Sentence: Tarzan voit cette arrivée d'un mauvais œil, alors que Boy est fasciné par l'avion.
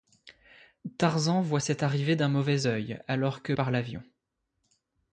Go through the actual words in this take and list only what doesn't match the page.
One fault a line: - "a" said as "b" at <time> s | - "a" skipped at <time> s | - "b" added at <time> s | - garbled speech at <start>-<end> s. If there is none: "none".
- "Boy est fasciné" skipped at 3.5 s